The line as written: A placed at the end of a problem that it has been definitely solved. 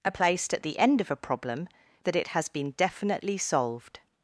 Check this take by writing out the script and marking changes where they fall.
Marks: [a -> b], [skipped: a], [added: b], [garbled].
A placed at the end of a problem that it has been definitely solved.